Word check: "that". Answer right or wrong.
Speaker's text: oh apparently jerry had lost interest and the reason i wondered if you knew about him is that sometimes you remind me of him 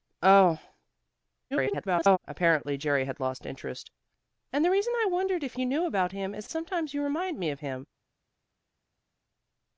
wrong